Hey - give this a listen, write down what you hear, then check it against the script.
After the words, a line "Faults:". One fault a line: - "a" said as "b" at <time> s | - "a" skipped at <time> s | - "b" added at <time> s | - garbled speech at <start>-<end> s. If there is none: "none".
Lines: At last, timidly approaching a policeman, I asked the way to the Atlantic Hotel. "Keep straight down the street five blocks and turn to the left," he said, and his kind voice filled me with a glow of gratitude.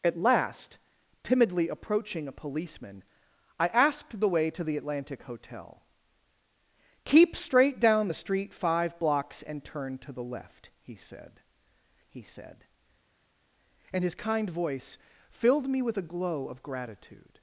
At last, timidly approaching a policeman, I asked the way to the Atlantic Hotel. "Keep straight down the street five blocks and turn to the left," he said he said, and his kind voice filled me with a glow of gratitude.
Faults:
- "he said" added at 12.1 s